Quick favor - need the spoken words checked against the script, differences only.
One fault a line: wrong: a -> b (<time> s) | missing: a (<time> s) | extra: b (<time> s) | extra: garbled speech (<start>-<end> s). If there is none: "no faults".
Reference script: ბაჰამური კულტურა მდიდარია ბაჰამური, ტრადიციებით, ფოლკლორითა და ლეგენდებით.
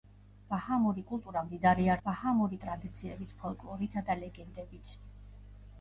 no faults